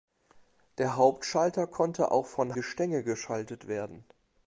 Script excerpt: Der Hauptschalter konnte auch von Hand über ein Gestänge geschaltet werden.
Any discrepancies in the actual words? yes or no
yes